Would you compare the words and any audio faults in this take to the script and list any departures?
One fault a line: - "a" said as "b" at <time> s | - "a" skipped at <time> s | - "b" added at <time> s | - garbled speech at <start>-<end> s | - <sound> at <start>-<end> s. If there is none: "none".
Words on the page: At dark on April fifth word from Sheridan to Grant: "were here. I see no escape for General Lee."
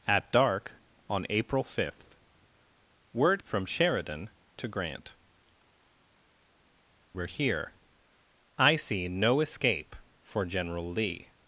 none